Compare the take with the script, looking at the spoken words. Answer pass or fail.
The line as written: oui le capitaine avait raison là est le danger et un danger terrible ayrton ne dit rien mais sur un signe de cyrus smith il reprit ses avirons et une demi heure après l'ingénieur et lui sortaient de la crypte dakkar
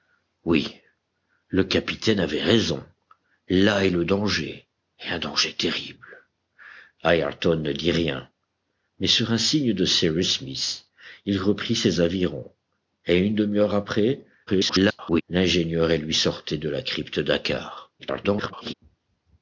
fail